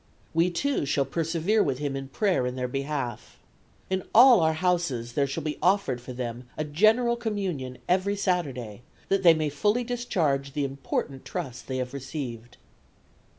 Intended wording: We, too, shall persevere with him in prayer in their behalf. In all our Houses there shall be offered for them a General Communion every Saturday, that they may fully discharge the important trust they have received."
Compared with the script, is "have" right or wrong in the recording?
right